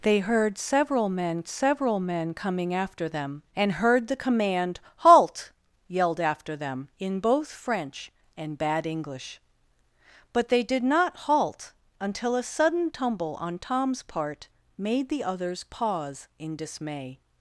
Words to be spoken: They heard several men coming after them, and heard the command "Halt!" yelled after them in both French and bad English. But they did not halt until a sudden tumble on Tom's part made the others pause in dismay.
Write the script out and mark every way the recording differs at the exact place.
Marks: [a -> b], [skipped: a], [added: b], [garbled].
They heard several men [added: several men] coming after them, and heard the command "Halt!" yelled after them in both French and bad English. But they did not halt until a sudden tumble on Tom's part made the others pause in dismay.